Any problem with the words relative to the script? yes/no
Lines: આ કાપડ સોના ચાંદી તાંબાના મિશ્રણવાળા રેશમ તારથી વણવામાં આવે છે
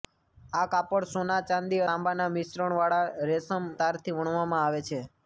no